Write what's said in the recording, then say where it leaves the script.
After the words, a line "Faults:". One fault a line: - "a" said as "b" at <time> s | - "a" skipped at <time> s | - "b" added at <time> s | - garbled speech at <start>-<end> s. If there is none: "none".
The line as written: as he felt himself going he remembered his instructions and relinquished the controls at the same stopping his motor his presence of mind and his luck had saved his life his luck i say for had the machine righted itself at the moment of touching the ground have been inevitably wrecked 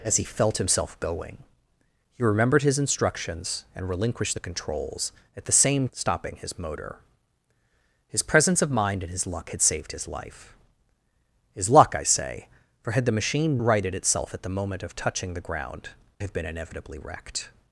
as he felt himself going he remembered his instructions and relinquished the controls at the same stopping his motor his presence of mind and his luck had saved his life his luck i say for had the machine righted itself at the moment of touching the ground have been inevitably wrecked
Faults:
none